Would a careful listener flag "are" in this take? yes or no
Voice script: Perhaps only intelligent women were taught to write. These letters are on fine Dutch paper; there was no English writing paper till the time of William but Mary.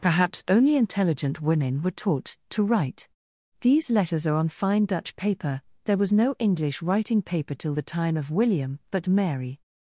no